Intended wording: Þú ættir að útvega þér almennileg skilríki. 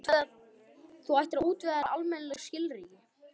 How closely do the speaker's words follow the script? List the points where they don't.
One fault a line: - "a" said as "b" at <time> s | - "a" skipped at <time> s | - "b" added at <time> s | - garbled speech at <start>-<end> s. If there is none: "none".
none